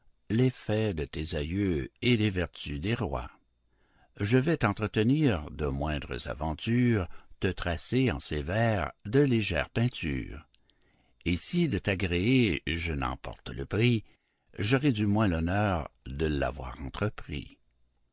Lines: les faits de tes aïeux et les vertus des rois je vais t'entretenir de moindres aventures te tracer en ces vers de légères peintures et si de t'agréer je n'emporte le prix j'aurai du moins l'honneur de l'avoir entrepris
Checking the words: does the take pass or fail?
pass